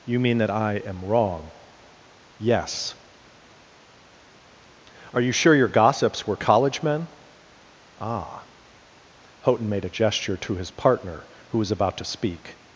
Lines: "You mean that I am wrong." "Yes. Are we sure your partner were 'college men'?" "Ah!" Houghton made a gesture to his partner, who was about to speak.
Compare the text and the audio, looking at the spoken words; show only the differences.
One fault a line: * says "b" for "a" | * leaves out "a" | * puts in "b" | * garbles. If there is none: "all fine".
* says "you" for "we"
* says "gossips" for "partner"